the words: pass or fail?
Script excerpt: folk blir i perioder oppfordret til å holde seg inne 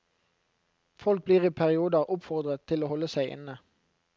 pass